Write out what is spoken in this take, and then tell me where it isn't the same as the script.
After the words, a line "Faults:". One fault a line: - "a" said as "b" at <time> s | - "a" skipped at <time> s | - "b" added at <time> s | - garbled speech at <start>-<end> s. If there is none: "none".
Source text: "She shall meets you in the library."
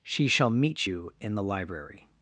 "She shall meet you in the library."
Faults:
- "meets" said as "meet" at 0.5 s